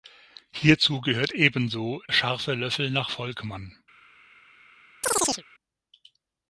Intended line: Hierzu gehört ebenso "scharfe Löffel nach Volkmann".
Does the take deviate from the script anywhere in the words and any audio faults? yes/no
yes